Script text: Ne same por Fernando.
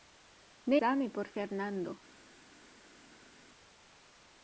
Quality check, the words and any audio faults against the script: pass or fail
pass